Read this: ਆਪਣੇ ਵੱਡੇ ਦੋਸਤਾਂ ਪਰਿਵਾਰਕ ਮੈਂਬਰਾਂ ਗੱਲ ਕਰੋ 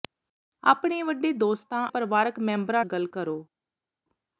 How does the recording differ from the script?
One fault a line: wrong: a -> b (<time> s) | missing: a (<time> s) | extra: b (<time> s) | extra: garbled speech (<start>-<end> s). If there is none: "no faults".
no faults